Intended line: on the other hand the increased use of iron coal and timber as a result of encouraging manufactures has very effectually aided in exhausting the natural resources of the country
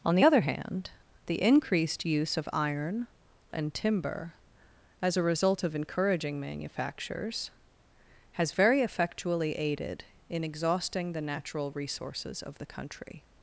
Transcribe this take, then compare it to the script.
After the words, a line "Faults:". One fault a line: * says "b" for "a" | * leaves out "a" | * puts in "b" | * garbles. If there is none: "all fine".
on the other hand the increased use of iron and timber as a result of encouraging manufactures has very effectually aided in exhausting the natural resources of the country
Faults:
* leaves out "coal"